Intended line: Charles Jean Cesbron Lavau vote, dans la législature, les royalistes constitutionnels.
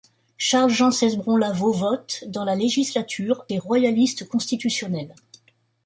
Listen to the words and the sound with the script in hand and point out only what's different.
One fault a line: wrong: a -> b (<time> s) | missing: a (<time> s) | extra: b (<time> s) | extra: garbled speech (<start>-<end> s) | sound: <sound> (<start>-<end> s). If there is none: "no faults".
no faults